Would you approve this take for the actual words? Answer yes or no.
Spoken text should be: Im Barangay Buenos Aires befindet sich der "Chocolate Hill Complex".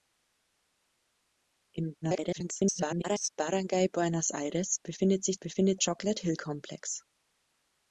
no